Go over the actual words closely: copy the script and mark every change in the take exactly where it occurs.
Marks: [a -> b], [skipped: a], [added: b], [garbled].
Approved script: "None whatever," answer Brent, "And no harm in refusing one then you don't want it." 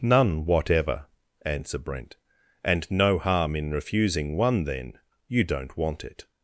"None whatever," answer Brent, "And no harm in refusing one then you don't want it."